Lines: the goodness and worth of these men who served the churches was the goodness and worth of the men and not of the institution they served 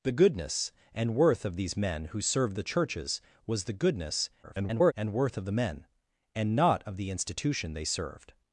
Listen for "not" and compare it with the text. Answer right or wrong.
right